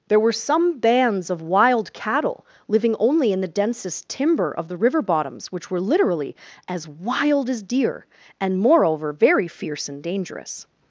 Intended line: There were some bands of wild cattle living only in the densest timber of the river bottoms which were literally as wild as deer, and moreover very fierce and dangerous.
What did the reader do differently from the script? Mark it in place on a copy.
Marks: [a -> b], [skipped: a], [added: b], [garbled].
There were some bands of wild cattle living only in the densest timber of the river bottoms which were literally as wild as deer, and moreover very fierce and dangerous.